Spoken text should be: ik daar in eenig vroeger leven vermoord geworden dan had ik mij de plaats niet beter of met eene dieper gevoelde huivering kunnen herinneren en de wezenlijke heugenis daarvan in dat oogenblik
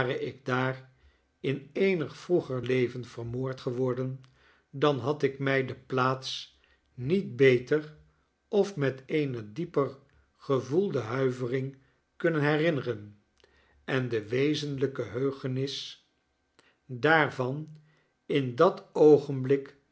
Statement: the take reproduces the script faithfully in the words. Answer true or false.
true